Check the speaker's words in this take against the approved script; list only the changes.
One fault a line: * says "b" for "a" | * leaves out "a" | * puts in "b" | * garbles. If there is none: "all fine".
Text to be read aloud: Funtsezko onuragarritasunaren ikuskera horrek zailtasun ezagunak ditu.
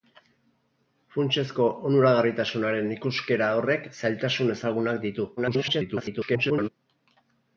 * garbles